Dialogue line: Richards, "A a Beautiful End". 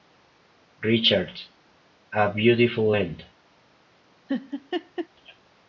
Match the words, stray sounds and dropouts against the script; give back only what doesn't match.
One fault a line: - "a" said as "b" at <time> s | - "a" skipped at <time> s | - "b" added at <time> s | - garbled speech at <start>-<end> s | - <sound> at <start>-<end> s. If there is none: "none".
- "a" skipped at 2.3 s
- laugh at 4.3-5.1 s